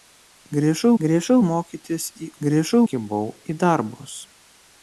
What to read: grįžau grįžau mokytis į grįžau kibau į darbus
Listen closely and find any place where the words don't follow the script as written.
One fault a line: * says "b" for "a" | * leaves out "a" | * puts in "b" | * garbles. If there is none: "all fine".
all fine